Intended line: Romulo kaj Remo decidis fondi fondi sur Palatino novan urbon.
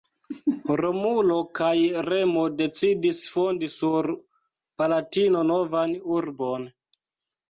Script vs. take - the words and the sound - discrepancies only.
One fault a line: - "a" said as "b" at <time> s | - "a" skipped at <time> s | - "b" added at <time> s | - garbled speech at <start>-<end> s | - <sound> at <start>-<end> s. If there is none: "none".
- "fondi" skipped at 3.7 s